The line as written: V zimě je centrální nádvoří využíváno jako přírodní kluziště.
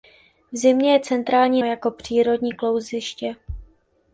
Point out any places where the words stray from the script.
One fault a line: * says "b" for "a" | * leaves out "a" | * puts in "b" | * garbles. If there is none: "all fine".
* leaves out "nádvoří využíváno"